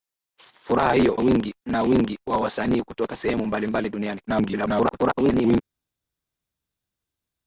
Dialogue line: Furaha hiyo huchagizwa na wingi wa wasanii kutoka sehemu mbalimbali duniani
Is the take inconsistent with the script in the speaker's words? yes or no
yes